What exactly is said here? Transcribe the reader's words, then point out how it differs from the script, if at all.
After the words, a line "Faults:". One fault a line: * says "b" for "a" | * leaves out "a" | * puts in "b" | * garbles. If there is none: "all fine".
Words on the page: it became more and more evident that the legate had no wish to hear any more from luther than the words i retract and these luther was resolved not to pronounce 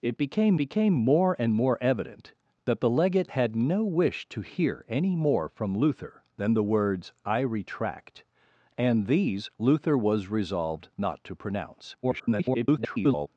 it became became more and more evident that the legate had no wish to hear any more from luther than the words i retract and these luther was resolved not to pronounce [garbled]
Faults:
* puts in "became"
* garbles